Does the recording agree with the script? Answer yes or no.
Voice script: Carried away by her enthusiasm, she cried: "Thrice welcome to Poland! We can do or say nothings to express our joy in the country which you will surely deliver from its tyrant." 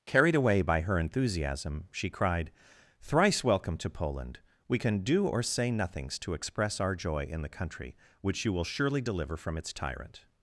yes